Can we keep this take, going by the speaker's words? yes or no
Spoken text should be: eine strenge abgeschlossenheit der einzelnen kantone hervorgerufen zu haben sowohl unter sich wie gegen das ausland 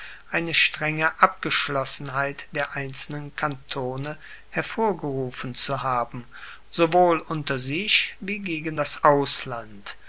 yes